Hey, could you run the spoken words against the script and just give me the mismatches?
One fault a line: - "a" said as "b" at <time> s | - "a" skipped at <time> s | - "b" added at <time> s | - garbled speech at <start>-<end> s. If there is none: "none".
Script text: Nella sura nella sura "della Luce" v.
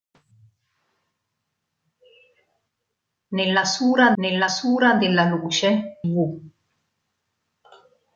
none